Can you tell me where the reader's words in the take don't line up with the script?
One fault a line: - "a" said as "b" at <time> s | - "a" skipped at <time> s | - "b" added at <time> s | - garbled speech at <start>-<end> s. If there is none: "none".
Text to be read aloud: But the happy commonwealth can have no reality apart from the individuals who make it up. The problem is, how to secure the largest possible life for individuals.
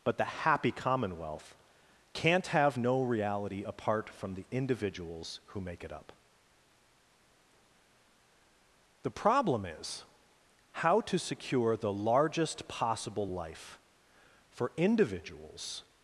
- "can" said as "can't" at 2.1 s